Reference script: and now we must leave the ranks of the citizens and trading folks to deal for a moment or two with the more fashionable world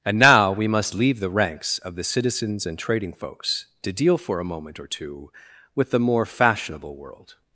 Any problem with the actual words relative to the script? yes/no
no